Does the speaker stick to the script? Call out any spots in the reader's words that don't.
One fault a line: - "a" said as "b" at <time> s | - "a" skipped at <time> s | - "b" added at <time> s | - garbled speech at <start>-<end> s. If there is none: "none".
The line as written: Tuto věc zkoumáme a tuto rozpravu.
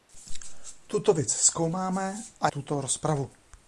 none